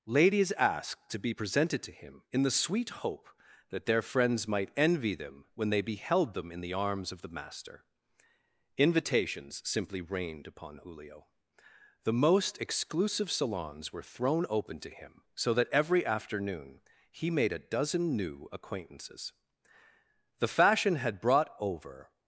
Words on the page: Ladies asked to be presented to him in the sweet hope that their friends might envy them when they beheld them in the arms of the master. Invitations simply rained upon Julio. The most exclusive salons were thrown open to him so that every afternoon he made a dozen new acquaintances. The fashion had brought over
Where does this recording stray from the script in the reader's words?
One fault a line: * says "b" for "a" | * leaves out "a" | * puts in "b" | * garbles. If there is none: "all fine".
all fine